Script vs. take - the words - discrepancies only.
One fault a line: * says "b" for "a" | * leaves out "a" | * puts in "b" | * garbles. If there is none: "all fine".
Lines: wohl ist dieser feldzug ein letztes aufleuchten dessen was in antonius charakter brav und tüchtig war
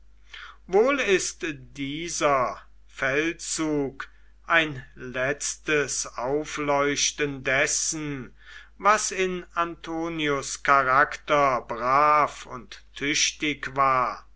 all fine